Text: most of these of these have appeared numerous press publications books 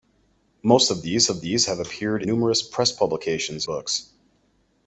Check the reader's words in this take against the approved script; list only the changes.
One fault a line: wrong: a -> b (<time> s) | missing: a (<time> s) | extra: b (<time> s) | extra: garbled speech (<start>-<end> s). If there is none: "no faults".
no faults